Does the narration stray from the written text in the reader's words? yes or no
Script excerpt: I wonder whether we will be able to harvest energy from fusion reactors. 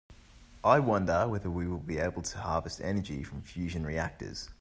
no